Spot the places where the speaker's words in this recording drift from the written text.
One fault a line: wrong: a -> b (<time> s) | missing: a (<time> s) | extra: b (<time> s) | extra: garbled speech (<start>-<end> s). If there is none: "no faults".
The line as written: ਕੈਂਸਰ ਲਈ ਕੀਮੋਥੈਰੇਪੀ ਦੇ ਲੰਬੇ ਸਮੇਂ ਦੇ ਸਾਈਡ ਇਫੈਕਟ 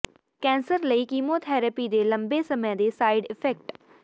no faults